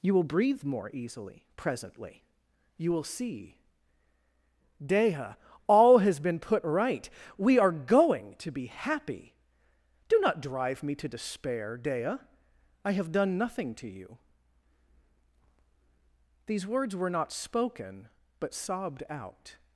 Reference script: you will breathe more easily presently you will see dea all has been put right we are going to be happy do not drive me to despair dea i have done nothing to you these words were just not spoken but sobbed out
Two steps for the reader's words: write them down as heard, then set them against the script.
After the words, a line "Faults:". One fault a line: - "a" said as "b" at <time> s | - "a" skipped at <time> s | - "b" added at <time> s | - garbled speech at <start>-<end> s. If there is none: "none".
you will breathe more easily presently you will see dea all has been put right we are going to be happy do not drive me to despair dea i have done nothing to you these words were not spoken but sobbed out
Faults:
- "just" skipped at 17.1 s